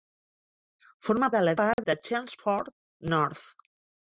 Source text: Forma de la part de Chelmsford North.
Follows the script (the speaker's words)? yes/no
yes